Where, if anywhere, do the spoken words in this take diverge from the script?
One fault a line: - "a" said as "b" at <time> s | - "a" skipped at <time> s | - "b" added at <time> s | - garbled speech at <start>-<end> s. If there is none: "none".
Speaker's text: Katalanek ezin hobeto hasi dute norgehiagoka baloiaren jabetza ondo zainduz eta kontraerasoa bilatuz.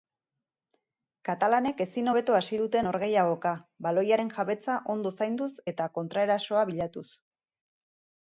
none